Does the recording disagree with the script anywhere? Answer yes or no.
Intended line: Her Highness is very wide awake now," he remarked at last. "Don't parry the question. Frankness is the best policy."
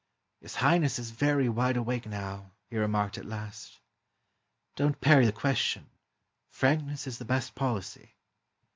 yes